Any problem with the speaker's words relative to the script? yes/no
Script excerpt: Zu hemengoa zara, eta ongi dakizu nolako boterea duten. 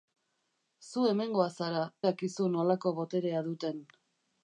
yes